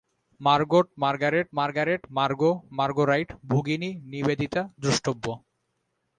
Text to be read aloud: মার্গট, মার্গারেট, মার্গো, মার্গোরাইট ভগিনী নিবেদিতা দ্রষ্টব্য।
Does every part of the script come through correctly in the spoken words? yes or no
no